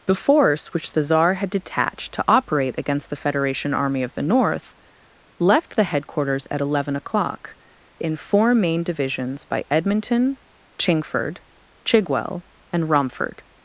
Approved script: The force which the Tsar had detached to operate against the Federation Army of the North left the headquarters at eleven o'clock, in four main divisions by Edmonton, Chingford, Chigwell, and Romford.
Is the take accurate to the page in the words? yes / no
yes